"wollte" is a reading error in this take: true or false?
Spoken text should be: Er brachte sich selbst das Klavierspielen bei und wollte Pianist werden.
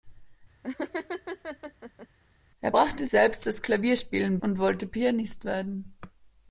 false